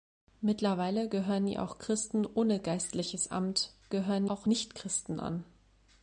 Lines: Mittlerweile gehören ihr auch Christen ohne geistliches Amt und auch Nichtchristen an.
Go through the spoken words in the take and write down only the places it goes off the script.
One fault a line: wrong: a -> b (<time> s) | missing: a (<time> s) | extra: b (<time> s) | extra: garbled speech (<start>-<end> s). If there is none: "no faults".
wrong: und -> gehören (3.9 s)